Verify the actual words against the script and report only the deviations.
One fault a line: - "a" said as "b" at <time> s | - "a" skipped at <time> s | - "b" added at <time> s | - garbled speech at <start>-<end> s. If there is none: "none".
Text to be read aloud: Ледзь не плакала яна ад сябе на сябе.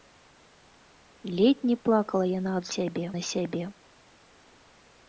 none